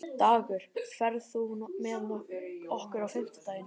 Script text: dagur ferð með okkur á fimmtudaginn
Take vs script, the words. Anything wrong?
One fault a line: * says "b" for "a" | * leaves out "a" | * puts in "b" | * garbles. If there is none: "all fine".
* puts in "þú"